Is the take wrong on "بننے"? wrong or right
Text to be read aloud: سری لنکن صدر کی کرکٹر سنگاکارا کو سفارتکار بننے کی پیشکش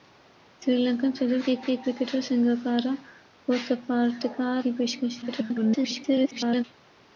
wrong